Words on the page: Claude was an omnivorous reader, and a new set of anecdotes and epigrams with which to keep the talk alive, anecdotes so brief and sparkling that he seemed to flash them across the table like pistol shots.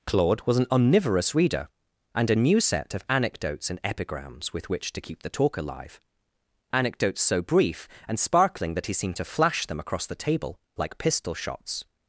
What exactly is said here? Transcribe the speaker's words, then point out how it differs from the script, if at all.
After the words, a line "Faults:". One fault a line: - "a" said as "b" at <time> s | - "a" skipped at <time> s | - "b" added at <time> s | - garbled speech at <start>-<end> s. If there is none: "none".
Claude was an omnivorous reader, and a new set of anecdotes and epigrams with which to keep the talk alive, anecdotes so brief and sparkling that he seemed to flash them across the table like pistol shots.
Faults:
none